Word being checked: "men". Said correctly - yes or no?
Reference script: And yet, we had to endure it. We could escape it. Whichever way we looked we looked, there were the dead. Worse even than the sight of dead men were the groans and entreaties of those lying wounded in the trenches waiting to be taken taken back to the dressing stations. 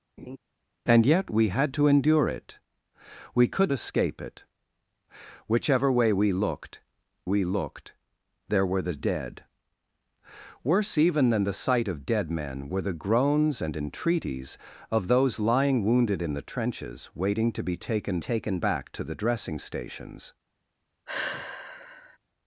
yes